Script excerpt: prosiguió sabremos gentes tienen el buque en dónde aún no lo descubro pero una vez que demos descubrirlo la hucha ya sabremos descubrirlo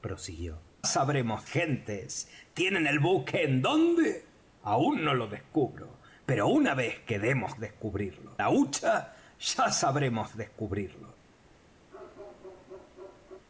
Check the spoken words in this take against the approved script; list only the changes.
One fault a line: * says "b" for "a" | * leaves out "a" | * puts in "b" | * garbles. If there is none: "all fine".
all fine